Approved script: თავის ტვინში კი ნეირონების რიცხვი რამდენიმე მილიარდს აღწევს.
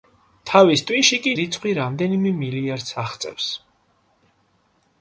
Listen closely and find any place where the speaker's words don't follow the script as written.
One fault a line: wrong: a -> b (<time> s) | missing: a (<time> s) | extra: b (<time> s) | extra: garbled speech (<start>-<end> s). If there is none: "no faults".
missing: ნეირონების (1.3 s)